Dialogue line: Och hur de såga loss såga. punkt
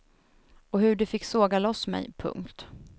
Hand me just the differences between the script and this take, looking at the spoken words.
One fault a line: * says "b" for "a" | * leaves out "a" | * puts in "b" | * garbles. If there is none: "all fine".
* puts in "fick"
* says "mig" for "såga"